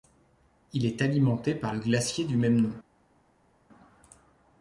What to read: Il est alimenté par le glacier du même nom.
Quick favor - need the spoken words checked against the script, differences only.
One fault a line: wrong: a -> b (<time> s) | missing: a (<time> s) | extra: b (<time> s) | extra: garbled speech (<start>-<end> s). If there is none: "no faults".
no faults